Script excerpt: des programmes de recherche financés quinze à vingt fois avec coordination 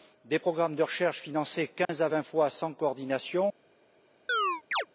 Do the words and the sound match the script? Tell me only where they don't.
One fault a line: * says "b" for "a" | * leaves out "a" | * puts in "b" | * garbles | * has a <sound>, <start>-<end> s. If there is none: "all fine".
* has a dropout, 1.8-1.9 s
* says "sans" for "avec"
* has a chirp, 4.3-4.9 s